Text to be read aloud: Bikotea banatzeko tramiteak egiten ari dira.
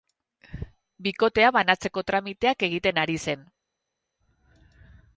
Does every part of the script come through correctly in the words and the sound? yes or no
no